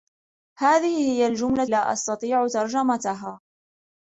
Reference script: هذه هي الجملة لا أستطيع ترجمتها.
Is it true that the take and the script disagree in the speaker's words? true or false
false